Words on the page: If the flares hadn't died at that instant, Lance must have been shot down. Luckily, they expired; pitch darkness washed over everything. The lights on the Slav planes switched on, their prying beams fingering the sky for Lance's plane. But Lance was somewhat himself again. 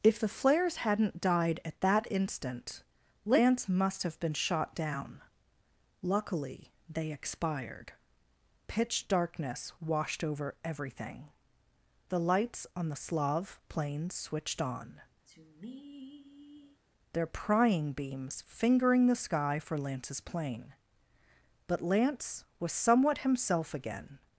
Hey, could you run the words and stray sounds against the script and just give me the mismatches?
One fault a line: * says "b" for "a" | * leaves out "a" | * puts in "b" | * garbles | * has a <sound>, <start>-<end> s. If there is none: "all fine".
* has a sigh, 15.3-16.8 s